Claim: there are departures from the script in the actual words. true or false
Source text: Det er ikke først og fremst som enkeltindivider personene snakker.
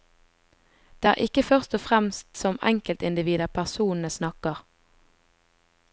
false